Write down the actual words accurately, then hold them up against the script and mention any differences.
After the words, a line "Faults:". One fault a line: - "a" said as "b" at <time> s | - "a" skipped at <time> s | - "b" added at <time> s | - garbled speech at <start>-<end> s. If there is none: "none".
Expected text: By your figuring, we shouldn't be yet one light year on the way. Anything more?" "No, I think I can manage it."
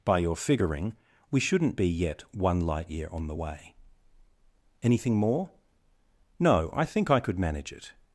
By your figuring, we shouldn't be yet one light year on the way. Anything more?" "No, I think I could manage it."
Faults:
- "can" said as "could" at 7.2 s